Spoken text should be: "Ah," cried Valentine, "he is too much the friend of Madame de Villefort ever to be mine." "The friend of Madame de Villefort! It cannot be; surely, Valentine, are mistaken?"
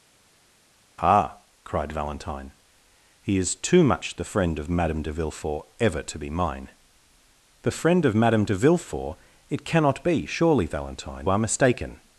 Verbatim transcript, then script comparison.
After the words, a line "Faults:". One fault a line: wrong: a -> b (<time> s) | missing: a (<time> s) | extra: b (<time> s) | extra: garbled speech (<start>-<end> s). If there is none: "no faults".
"Ah," cried Valentine, "he is too much the friend of Madame de Villefort ever to be mine." "The friend of Madame de Villefort! It cannot be; surely, Valentine, are mistaken?"
Faults:
no faults